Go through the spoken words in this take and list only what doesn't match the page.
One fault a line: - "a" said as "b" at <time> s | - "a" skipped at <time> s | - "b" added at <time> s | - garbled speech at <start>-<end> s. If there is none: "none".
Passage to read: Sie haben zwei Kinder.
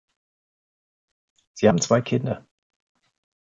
none